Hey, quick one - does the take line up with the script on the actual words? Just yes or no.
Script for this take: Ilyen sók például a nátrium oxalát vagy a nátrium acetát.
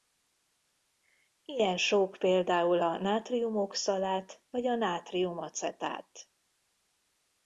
yes